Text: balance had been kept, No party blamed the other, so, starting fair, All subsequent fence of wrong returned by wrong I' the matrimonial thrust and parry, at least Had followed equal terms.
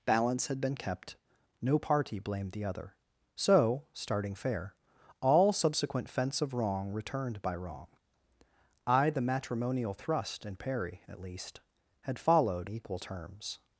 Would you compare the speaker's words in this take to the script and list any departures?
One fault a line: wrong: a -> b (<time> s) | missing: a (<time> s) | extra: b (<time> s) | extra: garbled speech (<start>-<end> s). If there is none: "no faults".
no faults